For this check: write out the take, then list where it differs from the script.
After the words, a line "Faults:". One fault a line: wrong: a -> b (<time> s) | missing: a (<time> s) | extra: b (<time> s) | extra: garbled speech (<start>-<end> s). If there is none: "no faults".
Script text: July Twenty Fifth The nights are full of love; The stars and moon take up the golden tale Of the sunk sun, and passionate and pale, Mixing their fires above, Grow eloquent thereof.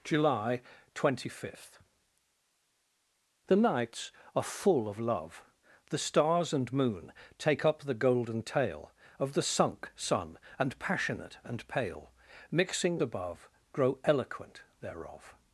July Twenty Fifth The nights are full of love; The stars and moon take up the golden tale Of the sunk sun, and passionate and pale, Mixing above, Grow eloquent thereof.
Faults:
missing: their fires (13.0 s)